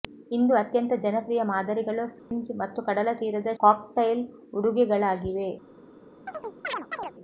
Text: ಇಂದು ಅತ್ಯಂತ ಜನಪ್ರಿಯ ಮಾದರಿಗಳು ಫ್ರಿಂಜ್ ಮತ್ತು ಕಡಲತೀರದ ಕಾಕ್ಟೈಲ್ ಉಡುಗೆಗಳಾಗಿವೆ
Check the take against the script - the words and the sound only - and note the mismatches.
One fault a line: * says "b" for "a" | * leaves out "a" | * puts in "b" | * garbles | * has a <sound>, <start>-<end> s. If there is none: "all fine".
* has a dropout, 2.2-2.3 s
* has a chirp, 6.3-7.1 s